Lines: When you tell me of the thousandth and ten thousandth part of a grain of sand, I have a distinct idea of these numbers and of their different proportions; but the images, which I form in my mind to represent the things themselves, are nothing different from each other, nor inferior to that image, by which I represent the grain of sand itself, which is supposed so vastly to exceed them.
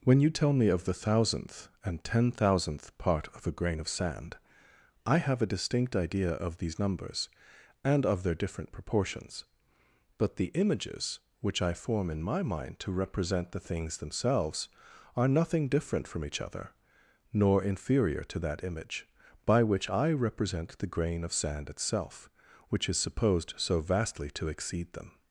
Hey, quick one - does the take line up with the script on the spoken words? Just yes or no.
yes